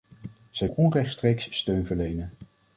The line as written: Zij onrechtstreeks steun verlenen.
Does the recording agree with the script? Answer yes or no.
yes